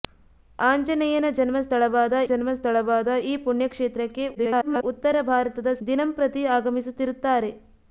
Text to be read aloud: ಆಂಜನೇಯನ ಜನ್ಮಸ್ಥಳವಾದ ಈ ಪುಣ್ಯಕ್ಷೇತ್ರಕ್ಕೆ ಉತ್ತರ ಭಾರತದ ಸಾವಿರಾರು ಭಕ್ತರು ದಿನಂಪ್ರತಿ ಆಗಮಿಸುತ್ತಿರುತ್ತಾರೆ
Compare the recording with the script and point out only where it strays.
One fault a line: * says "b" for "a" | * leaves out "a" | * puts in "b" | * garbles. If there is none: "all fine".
* puts in "ಜನ್ಮಸ್ಥಳವಾದ"
* garbles
* leaves out "ಸಾವಿರಾರು ಭಕ್ತರು"